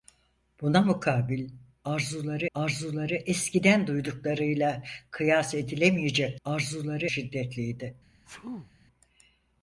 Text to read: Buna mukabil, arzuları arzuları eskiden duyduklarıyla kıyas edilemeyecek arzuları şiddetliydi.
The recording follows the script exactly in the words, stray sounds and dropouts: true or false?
false